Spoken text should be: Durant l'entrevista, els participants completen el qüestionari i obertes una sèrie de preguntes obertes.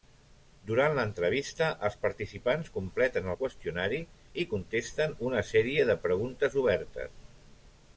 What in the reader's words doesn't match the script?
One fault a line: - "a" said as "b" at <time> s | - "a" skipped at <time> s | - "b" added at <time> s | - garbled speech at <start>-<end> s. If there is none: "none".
- "obertes" said as "contesten" at 4.5 s